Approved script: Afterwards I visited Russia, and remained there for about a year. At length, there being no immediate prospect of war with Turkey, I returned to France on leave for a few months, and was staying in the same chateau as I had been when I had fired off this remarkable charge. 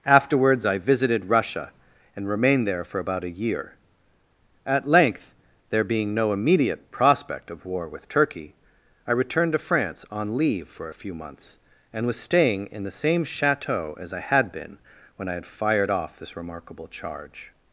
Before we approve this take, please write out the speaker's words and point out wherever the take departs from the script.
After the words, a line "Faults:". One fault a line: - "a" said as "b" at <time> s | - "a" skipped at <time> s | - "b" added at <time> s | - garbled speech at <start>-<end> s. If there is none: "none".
Afterwards I visited Russia, and remained there for about a year. At length, there being no immediate prospect of war with Turkey, I returned to France on leave for a few months, and was staying in the same chateau as I had been when I had fired off this remarkable charge.
Faults:
none